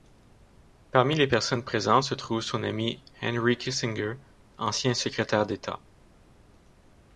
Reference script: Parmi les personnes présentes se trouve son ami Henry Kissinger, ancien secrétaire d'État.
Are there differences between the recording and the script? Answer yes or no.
no